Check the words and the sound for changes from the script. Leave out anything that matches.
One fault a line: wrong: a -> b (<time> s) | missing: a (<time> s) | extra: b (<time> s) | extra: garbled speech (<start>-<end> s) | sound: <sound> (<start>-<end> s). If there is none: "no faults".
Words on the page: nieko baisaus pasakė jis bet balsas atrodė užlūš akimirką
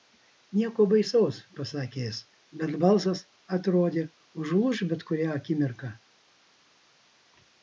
extra: bet kurią (5.0 s)